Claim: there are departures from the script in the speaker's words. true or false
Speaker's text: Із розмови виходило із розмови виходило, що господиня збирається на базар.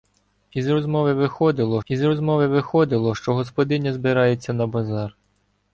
false